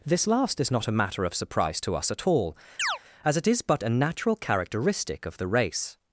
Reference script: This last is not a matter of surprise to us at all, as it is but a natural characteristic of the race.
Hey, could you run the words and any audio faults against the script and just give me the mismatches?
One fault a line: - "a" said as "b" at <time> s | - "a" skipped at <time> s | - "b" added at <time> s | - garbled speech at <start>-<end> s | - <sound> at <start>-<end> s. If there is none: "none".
- chirp at 2.8-3.0 s